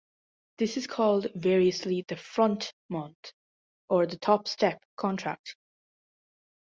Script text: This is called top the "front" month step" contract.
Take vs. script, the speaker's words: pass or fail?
fail